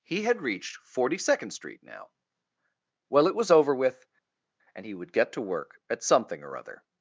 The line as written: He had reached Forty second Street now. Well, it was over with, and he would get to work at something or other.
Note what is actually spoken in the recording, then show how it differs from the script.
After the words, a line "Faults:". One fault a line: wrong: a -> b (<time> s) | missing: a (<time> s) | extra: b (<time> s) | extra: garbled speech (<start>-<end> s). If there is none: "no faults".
He had reached Forty second Street now. Well, it was over with, and he would get to work at something or other.
Faults:
no faults